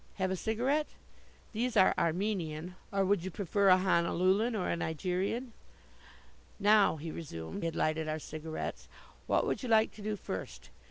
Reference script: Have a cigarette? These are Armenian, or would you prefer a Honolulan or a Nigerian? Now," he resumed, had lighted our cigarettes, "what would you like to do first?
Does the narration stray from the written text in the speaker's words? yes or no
no